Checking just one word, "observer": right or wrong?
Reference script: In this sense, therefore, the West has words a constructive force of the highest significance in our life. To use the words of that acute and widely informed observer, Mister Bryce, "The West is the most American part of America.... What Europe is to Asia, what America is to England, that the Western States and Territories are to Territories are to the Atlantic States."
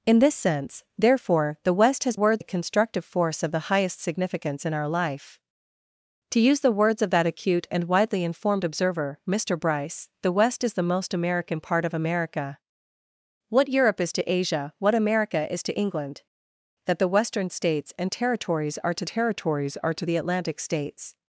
right